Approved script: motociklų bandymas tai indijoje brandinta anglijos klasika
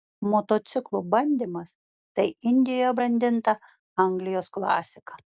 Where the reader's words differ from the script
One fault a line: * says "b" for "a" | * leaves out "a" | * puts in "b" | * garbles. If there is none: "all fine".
all fine